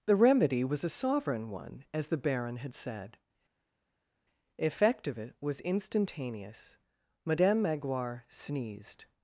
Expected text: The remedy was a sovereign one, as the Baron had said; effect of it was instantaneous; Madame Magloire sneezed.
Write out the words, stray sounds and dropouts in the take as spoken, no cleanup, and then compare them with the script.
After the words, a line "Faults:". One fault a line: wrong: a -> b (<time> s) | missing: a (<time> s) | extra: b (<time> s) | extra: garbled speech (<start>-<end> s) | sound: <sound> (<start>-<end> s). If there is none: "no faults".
The remedy was a sovereign one, as the Baron had said; effect of it was instantaneous; Madame Magloire sneezed.
Faults:
no faults